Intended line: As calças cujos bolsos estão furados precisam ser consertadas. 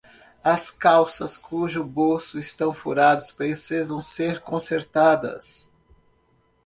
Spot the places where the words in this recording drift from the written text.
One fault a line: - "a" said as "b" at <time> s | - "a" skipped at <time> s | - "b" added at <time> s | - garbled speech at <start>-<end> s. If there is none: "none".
none